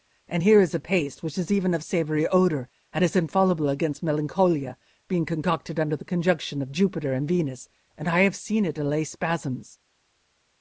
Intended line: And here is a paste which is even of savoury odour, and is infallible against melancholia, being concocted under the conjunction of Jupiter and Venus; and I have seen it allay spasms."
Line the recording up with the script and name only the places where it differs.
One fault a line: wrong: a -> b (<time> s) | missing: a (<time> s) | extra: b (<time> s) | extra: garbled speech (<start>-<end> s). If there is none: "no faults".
no faults